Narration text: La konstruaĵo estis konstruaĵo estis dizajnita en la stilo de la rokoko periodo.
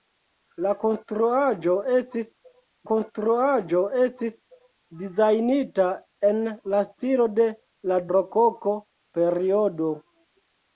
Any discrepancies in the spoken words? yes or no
no